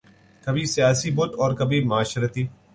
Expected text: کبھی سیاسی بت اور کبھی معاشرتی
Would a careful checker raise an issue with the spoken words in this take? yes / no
no